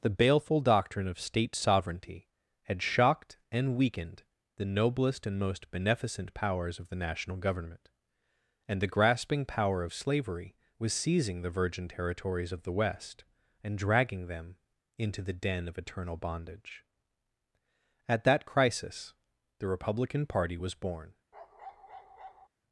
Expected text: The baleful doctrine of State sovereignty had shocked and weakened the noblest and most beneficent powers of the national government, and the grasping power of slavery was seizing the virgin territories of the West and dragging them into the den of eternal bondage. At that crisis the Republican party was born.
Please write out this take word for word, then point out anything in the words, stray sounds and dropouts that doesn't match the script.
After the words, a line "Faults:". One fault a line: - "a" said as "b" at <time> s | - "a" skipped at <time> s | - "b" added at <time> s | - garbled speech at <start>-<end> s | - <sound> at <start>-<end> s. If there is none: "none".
The baleful doctrine of State sovereignty had shocked and weakened the noblest and most beneficent powers of the national government, and the grasping power of slavery was seizing the virgin territories of the West and dragging them into the den of eternal bondage. At that crisis the Republican party was born.
Faults:
- bark at 21.3-22.5 s